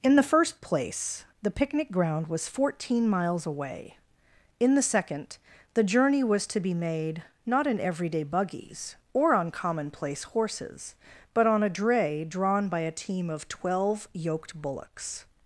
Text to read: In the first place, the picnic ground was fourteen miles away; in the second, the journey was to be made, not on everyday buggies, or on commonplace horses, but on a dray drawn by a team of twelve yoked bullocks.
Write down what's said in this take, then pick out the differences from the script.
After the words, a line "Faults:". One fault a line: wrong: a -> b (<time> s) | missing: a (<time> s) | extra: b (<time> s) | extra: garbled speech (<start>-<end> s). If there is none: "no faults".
In the first place, the picnic ground was fourteen miles away; in the second, the journey was to be made, not in everyday buggies, or on commonplace horses, but on a dray drawn by a team of twelve yoked bullocks.
Faults:
wrong: on -> in (7.7 s)